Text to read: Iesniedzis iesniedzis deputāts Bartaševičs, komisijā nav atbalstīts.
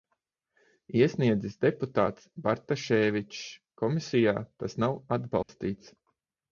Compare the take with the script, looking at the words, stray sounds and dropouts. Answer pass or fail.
fail